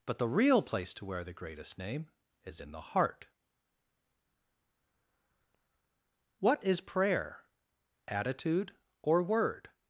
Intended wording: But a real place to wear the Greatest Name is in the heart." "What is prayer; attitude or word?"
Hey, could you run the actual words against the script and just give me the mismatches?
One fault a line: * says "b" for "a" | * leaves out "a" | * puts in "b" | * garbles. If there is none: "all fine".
* says "the" for "a"